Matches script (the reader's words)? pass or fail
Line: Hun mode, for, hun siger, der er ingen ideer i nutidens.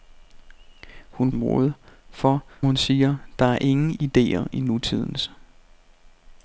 pass